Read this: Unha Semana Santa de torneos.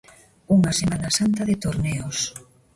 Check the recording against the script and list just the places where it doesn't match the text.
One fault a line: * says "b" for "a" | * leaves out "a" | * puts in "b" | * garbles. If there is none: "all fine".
all fine